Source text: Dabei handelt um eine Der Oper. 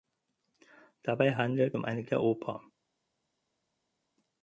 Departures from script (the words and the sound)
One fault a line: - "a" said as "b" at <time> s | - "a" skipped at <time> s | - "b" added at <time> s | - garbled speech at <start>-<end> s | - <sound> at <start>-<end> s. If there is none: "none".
none